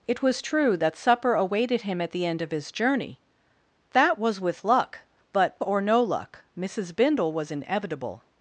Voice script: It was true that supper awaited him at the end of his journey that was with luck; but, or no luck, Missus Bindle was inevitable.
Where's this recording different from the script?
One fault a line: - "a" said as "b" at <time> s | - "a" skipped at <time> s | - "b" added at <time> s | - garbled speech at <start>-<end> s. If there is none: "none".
none